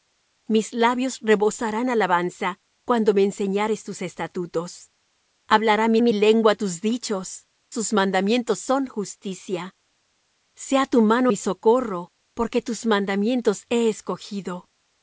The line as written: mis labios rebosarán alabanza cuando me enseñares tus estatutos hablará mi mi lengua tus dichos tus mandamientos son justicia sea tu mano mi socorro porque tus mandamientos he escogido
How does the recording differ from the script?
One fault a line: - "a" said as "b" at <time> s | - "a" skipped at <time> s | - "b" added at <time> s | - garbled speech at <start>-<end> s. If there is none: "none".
none